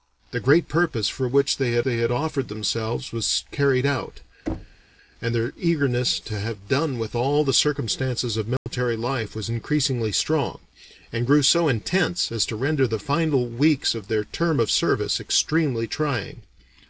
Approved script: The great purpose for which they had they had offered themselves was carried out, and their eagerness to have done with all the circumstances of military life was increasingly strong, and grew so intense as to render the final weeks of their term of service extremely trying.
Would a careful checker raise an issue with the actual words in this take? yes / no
no